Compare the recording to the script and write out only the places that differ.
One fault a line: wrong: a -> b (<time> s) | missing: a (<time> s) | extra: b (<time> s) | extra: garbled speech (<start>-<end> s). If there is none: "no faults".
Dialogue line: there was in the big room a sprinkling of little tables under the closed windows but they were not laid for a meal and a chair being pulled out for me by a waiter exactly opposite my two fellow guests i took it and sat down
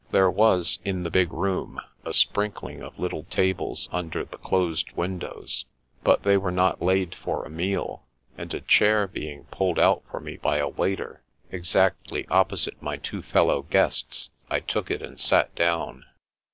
no faults